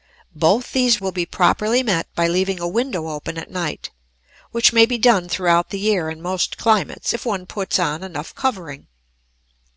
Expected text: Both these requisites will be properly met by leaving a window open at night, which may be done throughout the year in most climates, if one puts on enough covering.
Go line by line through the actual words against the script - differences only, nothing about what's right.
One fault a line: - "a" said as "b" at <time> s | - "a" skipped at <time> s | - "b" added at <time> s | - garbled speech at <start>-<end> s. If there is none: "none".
- "requisites" skipped at 1.0 s